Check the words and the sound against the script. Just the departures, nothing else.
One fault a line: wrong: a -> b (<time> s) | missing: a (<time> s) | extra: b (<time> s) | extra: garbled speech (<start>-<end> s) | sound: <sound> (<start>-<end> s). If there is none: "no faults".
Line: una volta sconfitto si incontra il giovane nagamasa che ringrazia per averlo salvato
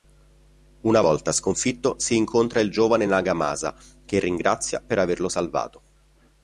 no faults